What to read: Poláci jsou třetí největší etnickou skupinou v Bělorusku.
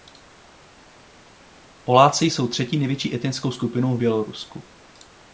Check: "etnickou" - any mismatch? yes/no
no